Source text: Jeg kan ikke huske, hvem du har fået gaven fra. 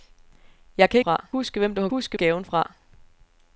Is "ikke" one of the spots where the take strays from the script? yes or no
yes